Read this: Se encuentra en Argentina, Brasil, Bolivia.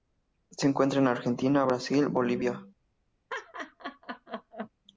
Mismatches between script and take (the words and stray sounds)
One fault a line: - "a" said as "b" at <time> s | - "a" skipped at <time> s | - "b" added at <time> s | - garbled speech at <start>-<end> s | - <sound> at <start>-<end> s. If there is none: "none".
- laugh at 3.3-4.7 s